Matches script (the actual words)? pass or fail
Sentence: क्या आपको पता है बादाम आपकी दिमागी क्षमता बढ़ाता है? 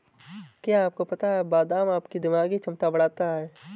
pass